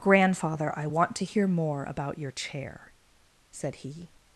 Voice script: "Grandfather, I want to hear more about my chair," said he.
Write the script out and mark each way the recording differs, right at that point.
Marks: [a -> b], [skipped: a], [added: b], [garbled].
"Grandfather, I want to hear more about [my -> your] chair," said he.